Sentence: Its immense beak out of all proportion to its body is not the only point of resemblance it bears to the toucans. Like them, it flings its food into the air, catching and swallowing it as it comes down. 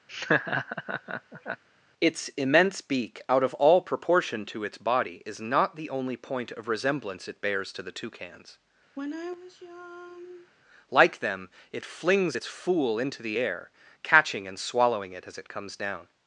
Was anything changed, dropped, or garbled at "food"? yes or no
yes